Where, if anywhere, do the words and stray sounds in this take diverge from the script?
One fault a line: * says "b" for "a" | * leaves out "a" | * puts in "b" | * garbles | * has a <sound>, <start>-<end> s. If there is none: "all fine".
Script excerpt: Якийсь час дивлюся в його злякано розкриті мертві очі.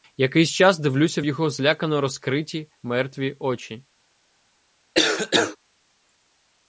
* has a cough, 4.9-5.6 s